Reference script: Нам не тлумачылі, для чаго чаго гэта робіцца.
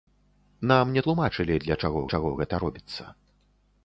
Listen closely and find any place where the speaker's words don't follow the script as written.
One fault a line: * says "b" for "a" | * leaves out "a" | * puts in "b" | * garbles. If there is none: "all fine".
all fine